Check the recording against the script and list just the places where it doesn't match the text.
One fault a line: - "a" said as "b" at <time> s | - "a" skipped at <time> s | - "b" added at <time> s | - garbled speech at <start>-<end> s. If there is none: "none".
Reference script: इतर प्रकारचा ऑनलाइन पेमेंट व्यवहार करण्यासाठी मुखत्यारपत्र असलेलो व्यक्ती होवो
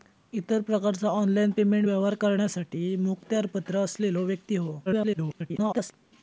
- garbled speech at 4.9-5.9 s